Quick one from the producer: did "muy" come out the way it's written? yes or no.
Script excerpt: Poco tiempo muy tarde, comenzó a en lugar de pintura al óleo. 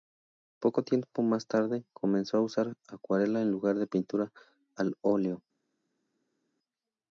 no